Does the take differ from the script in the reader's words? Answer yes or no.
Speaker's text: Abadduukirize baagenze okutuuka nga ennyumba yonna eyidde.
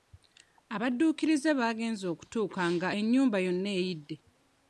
no